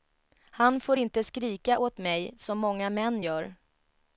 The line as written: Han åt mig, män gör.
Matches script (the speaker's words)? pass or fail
fail